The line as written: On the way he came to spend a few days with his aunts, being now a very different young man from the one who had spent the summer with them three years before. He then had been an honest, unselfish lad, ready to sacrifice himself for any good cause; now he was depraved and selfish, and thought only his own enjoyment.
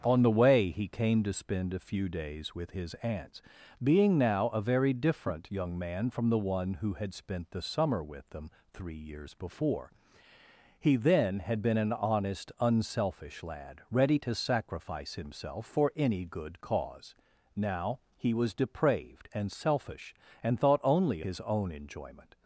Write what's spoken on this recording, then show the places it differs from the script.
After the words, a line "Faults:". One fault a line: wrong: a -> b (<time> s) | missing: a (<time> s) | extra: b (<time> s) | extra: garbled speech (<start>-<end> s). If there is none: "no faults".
On the way he came to spend a few days with his aunts, being now a very different young man from the one who had spent the summer with them three years before. He then had been an honest, unselfish lad, ready to sacrifice himself for any good cause; now he was depraved and selfish, and thought only his own enjoyment.
Faults:
no faults